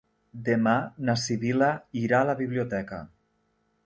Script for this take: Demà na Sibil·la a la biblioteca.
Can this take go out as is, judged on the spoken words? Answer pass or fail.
fail